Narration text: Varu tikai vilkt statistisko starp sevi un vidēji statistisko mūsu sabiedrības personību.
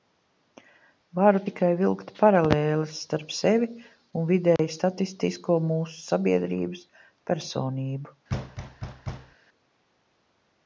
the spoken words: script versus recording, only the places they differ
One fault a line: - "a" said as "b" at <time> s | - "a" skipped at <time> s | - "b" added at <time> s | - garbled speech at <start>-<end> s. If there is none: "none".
- "statistisko" said as "paralēles" at 2.2 s